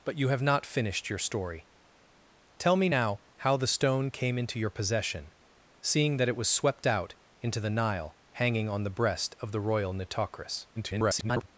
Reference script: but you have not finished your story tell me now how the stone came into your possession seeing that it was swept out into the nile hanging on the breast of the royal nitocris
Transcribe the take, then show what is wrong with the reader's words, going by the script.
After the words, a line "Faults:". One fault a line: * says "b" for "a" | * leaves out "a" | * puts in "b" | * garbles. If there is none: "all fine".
but you have not finished your story tell me now how the stone came into your possession seeing that it was swept out into the nile hanging on the breast of the royal nitocris [garbled]
Faults:
* garbles